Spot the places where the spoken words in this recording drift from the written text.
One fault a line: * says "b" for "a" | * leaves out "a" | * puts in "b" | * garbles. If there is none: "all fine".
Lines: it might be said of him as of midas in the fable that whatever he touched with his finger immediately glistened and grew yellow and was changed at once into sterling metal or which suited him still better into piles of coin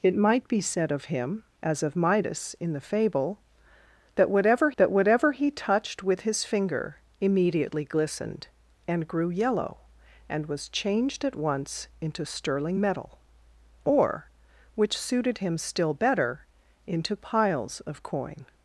* puts in "that whatever"